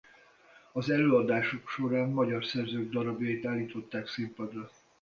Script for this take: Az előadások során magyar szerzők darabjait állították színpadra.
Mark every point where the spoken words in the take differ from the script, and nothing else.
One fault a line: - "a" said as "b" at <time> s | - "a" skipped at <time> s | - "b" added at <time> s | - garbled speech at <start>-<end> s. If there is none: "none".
none